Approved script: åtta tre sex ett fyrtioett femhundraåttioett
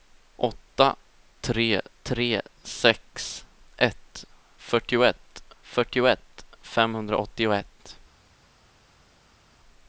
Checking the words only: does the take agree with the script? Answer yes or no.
no